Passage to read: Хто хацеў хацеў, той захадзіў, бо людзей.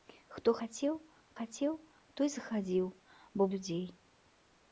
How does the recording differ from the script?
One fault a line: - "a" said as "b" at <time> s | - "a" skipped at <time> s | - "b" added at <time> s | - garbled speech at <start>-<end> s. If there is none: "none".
none